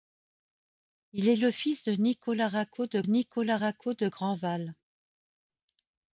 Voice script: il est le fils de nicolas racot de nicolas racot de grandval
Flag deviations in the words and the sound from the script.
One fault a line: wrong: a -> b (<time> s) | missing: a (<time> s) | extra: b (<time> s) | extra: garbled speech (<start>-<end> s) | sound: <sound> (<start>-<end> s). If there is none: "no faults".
no faults